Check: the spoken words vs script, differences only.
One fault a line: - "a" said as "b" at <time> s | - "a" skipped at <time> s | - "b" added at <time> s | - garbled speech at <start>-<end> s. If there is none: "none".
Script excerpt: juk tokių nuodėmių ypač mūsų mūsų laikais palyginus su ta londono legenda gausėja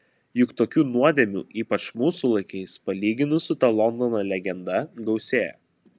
- "mūsų" skipped at 2.3 s